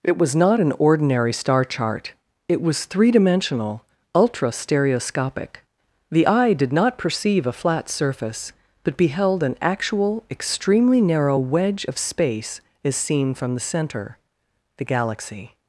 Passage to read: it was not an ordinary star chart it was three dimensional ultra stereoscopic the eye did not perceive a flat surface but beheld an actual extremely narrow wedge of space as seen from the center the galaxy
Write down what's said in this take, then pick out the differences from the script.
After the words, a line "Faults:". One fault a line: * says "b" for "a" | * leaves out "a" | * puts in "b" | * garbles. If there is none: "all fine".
it was not an ordinary star chart it was three dimensional ultra stereoscopic the eye did not perceive a flat surface but beheld an actual extremely narrow wedge of space as seen from the center the galaxy
Faults:
all fine